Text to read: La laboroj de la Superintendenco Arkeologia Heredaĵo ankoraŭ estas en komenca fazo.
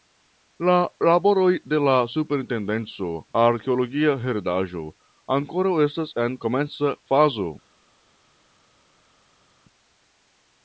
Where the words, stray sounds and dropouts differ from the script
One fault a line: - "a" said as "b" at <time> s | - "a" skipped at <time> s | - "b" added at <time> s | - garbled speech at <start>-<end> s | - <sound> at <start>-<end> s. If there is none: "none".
none